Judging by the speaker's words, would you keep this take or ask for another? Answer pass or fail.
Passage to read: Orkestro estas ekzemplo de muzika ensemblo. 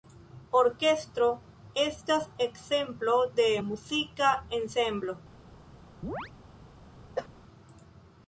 pass